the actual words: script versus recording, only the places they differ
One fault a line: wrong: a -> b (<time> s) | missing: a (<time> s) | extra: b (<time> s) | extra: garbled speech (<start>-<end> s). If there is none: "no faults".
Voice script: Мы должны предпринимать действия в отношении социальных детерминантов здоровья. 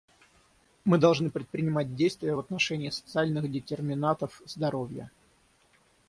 no faults